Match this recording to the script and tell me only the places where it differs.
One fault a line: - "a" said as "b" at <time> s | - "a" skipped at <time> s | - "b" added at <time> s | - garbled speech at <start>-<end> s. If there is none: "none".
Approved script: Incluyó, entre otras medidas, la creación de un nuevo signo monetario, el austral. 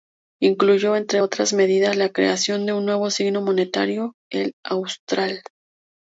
none